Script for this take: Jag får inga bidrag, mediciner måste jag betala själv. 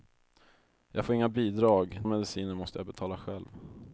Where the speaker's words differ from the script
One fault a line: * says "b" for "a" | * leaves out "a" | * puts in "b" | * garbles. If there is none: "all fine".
all fine